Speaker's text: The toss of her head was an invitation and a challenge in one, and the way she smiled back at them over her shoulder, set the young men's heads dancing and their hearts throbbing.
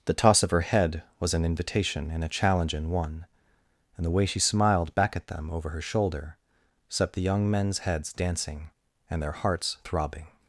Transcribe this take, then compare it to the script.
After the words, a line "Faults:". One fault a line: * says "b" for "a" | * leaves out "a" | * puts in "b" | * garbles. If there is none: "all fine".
The toss of her head was an invitation and a challenge in one, and the way she smiled back at them over her shoulder, set the young men's heads dancing and their hearts throbbing.
Faults:
all fine